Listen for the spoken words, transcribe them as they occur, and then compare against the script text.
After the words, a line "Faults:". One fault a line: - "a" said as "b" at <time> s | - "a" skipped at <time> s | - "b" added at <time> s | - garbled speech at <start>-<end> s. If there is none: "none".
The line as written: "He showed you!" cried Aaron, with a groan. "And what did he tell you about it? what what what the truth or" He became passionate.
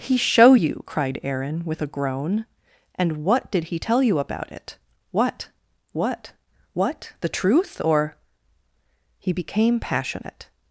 "He show you!" cried Aaron, with a groan. "And what did he tell you about it? what what what the truth or" He became passionate.
Faults:
- "showed" said as "show" at 0.2 s